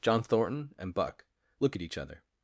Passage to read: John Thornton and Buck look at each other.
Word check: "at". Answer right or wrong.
right